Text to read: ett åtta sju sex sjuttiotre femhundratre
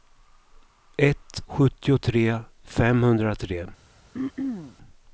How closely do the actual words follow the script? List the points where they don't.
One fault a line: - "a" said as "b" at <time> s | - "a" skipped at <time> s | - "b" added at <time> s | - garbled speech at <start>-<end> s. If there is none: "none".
- "åtta sju sex" skipped at 1.4 s